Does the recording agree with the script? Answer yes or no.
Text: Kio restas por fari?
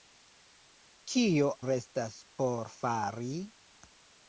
yes